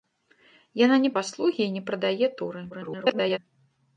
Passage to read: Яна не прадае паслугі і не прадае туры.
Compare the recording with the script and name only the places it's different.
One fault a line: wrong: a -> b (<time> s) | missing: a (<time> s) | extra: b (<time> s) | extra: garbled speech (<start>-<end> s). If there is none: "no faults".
missing: прадае (1.1 s)
extra: garbled speech (2.7-3.4 s)